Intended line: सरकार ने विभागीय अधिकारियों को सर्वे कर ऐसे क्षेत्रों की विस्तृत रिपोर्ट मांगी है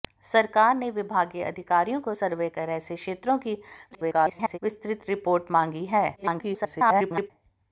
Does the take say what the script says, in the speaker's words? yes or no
no